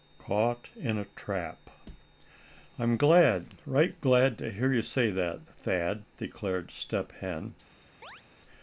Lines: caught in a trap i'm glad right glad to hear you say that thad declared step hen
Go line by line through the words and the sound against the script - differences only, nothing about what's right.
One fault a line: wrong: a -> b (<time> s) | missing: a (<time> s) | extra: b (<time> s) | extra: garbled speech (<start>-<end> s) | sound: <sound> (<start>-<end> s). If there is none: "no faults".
sound: chirp (8.0-8.2 s)